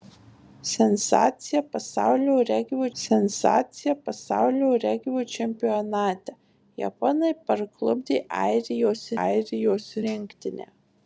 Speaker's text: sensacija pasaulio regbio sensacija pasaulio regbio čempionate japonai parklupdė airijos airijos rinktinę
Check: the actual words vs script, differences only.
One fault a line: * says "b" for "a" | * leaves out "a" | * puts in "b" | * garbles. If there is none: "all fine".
all fine